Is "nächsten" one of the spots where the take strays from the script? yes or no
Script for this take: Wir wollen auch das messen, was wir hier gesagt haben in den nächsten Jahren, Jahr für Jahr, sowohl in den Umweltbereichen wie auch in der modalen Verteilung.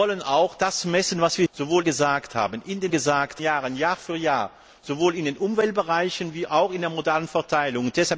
yes